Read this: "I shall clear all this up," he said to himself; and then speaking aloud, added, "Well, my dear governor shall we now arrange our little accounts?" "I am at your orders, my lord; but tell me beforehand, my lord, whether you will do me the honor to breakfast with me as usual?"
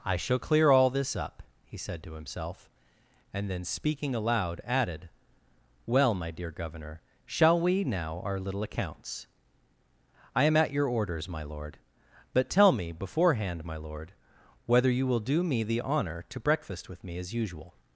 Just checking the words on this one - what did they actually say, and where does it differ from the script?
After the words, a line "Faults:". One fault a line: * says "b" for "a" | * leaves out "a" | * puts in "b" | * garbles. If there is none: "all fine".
"I shall clear all this up," he said to himself; and then speaking aloud, added, "Well, my dear governor shall we now our little accounts?" "I am at your orders, my lord; but tell me beforehand, my lord, whether you will do me the honor to breakfast with me as usual?"
Faults:
* leaves out "arrange"